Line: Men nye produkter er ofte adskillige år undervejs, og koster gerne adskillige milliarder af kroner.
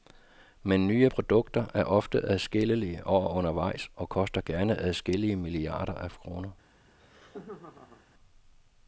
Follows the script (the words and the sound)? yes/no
no